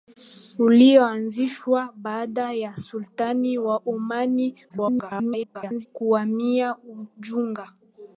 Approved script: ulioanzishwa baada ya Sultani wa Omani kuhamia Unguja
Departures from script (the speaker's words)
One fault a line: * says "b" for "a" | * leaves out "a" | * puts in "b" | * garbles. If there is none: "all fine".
* garbles